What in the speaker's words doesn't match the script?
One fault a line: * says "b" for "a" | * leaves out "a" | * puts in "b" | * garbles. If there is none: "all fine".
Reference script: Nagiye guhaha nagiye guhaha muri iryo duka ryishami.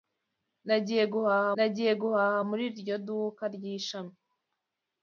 all fine